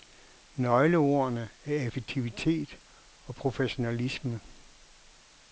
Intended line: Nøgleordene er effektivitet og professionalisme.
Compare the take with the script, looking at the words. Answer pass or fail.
pass